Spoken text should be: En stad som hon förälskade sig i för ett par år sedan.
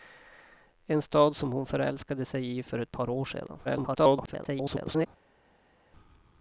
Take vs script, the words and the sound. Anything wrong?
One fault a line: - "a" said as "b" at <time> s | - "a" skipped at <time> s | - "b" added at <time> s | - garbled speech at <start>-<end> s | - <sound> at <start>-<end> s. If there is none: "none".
- garbled speech at 3.6-5.1 s